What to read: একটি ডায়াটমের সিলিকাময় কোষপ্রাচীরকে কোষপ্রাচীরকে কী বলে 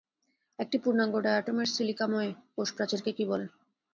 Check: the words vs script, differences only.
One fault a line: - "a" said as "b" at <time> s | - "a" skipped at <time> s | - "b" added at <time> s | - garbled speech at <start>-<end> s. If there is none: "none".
- "পূর্ণাঙ্গ" added at 0.8 s
- "কোষপ্রাচীরকে" skipped at 3.1 s